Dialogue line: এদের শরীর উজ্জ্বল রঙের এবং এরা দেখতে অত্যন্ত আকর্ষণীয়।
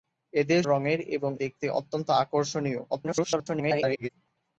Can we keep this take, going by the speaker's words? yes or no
no